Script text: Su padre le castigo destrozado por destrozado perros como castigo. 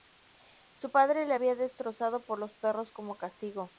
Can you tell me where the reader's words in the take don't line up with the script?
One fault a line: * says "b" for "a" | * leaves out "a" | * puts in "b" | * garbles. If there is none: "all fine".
* says "había" for "castigo"
* says "los" for "destrozado"